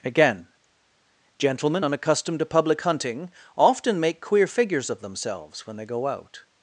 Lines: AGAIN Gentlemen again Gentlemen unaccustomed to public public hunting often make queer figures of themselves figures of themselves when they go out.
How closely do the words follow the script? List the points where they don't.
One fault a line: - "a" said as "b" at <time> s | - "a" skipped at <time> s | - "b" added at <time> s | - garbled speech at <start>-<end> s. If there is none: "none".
- "again Gentlemen" skipped at 1.9 s
- "public" skipped at 2.8 s
- "figures of themselves" skipped at 5.7 s